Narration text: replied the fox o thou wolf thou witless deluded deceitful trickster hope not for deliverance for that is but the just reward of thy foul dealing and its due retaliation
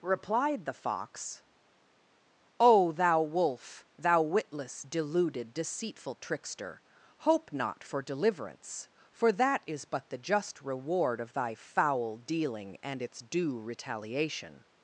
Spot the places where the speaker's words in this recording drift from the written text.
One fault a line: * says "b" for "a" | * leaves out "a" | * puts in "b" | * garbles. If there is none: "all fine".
all fine